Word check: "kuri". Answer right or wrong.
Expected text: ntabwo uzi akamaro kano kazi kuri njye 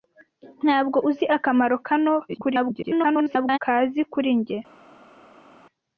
right